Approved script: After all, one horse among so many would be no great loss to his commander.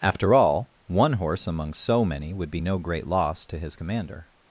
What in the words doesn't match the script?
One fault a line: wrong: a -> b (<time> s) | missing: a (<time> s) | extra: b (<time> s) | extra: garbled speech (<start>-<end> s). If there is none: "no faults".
no faults